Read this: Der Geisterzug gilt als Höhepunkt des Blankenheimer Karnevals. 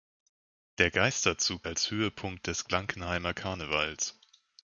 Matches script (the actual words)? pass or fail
fail